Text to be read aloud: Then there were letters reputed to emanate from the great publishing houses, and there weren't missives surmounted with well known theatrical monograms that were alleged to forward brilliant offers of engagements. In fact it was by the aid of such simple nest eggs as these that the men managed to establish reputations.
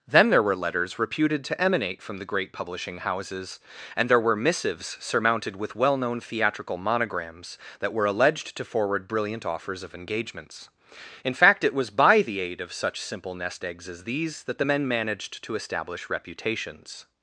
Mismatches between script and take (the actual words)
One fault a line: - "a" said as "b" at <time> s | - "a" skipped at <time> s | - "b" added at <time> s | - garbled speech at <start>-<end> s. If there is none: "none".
- "weren't" said as "were" at 4.2 s